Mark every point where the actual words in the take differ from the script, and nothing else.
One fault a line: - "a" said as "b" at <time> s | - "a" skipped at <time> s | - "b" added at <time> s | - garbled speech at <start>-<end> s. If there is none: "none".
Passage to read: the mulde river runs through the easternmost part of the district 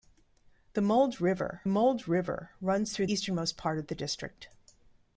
- "mulde river" added at 1.7 s
- "the" skipped at 3.0 s